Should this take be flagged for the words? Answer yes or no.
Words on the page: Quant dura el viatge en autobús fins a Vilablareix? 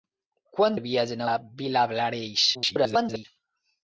yes